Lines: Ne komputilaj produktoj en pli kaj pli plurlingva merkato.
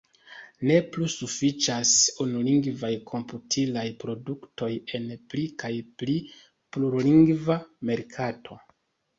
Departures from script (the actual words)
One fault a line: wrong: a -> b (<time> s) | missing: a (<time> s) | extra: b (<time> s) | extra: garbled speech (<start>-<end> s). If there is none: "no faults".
extra: plu sufiĉas unulingvaj (0.9 s)